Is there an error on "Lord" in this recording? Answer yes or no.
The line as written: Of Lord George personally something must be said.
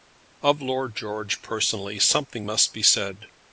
no